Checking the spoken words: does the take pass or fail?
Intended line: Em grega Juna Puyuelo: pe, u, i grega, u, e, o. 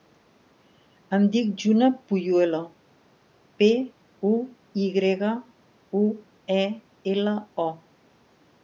fail